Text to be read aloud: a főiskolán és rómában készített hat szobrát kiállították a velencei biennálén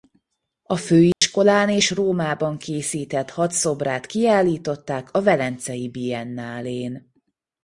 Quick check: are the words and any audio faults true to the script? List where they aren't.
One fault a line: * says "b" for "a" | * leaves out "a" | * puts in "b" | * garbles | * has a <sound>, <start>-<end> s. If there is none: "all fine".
* has a dropout, 1.1-1.2 s